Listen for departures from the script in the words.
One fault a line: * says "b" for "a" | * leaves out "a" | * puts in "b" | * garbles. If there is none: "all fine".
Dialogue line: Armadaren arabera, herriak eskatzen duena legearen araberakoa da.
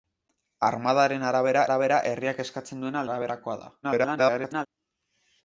* puts in "arabera"
* leaves out "legearen"
* garbles